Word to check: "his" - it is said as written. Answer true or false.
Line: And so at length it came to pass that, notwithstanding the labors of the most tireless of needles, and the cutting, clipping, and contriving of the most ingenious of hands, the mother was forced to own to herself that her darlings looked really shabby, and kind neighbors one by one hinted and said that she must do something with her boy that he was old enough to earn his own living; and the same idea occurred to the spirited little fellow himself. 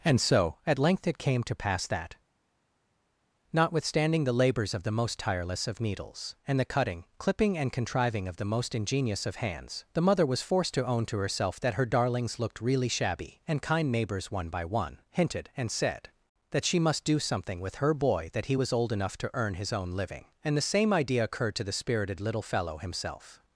true